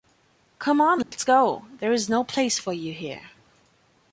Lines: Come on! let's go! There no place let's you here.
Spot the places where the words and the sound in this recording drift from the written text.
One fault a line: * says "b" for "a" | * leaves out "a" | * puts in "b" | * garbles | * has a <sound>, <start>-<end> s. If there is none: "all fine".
* has a dropout, 1.0-1.1 s
* puts in "is"
* says "for" for "let's"